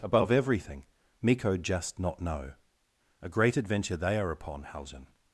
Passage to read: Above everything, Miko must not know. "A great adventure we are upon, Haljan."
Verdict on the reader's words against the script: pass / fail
fail